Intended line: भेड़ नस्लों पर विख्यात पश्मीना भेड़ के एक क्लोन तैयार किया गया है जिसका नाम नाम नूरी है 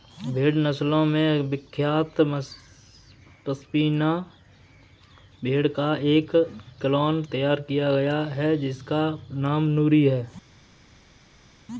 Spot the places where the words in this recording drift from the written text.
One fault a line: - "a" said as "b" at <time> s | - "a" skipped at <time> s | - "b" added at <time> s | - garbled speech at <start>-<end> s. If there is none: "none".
- "पर" said as "में" at 1.1 s
- "के" said as "का" at 5.7 s
- "नाम" skipped at 9.6 s